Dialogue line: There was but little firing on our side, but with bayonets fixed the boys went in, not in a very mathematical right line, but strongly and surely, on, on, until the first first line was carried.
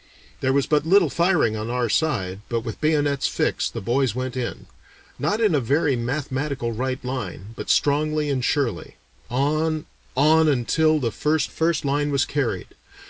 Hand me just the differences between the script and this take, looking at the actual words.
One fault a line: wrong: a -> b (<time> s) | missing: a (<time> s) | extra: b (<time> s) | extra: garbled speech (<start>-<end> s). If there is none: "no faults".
no faults